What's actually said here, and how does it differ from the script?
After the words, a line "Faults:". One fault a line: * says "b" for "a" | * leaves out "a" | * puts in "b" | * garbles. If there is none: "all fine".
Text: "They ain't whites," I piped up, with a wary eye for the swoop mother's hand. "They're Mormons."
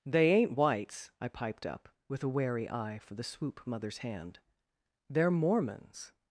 "They ain't whites," I piped up, with a wary eye for the swoop mother's hand. "They're Mormons."
Faults:
all fine